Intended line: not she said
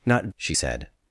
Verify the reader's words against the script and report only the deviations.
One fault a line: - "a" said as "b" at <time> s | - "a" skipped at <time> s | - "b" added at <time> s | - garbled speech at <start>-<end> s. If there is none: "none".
none